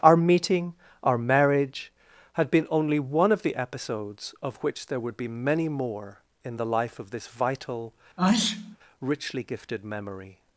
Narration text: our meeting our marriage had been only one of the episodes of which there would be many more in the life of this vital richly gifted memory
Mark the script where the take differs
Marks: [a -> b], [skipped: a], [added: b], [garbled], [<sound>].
our meeting our marriage had been only one of the episodes of which there would be many more in the life of this vital [sneeze] richly gifted memory